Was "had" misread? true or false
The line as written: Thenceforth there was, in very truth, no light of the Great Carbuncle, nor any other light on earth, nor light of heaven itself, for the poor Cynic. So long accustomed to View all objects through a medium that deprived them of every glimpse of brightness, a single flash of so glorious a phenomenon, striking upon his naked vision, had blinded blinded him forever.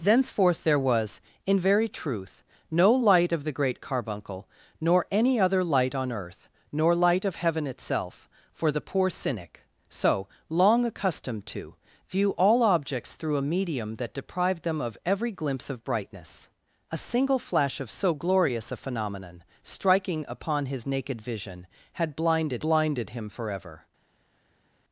false